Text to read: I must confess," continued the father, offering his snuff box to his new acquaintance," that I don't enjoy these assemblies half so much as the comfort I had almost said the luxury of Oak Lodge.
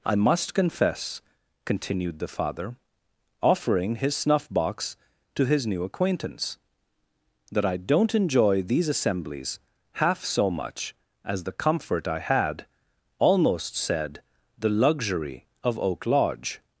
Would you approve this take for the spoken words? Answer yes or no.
yes